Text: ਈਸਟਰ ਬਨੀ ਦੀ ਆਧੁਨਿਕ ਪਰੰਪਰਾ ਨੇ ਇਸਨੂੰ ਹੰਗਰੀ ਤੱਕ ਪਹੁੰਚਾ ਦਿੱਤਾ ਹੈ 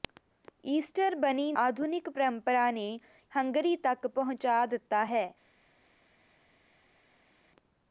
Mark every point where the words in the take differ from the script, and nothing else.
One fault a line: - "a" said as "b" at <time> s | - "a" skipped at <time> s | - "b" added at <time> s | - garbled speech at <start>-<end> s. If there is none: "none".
- "ਦੀ" skipped at 1.5 s
- "ਇਸਨੂੰ" skipped at 3.0 s